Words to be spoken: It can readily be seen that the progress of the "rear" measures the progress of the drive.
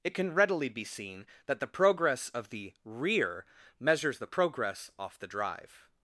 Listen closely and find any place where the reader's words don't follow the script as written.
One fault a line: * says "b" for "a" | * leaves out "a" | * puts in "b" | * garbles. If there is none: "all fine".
* says "off" for "of"